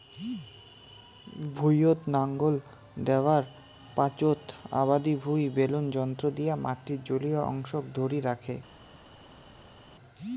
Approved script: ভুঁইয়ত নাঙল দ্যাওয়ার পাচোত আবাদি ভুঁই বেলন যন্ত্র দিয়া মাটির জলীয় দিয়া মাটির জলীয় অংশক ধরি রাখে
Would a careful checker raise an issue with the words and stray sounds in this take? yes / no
yes